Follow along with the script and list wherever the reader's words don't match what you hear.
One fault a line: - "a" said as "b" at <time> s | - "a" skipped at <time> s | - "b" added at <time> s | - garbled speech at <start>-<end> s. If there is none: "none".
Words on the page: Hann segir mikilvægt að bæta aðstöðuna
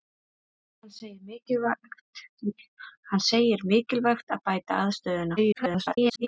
- garbled speech at 5.4-6.3 s